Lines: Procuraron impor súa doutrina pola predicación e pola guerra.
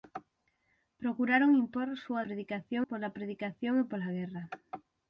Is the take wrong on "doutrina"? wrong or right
wrong